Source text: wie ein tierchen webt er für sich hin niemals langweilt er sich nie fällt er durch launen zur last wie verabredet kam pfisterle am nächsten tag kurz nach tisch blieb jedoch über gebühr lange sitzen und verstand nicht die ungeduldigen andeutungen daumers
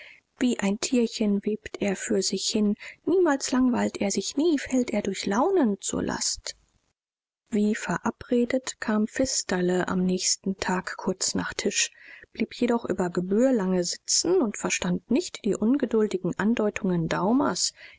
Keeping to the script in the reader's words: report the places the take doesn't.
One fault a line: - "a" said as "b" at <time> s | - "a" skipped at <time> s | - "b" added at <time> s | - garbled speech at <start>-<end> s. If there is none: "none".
none